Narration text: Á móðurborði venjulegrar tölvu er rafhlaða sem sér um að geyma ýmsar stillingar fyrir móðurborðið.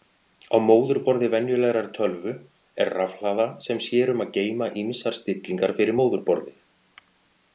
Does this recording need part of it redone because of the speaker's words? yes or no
no